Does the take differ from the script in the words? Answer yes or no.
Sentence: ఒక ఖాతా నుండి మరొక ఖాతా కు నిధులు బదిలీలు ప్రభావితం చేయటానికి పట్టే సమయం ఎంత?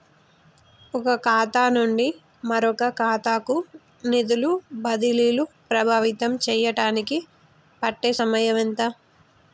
no